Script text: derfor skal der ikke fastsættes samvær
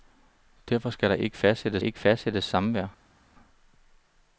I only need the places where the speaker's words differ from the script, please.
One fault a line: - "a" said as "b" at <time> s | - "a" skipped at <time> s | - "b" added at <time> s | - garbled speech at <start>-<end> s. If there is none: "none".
- "ikke fastsættes" added at 1.8 s